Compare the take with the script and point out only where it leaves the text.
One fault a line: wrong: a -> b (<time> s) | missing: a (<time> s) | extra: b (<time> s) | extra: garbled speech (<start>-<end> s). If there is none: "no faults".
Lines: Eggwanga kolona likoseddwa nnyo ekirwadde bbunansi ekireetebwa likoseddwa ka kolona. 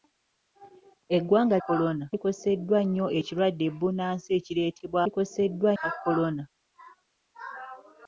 no faults